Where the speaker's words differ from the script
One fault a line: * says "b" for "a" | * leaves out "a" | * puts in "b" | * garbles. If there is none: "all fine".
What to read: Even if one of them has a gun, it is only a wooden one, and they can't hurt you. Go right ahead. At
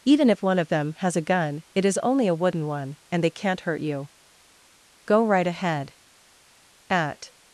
all fine